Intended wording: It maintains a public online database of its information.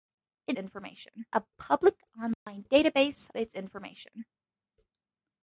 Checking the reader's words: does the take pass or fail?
fail